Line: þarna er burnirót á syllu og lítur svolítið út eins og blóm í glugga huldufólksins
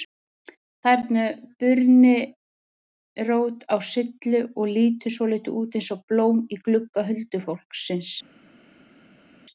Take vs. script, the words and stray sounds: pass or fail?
pass